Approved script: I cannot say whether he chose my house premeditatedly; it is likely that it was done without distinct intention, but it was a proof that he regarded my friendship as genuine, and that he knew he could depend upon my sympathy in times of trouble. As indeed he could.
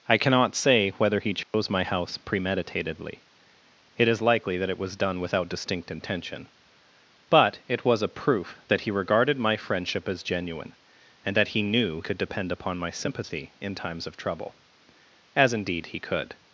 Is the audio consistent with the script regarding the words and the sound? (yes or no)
no